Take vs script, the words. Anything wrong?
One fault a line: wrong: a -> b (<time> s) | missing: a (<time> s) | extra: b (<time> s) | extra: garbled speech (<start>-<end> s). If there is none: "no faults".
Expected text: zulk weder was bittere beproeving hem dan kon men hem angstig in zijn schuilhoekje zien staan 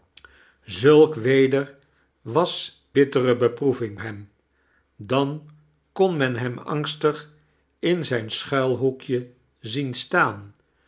no faults